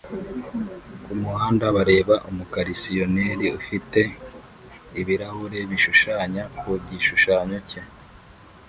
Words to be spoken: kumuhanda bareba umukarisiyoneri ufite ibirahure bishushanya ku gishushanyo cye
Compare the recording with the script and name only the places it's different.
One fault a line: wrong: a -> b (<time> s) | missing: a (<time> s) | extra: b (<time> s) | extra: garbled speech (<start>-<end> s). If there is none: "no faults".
no faults